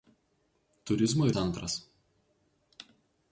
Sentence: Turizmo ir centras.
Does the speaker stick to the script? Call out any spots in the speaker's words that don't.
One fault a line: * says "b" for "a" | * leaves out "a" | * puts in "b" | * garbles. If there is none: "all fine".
all fine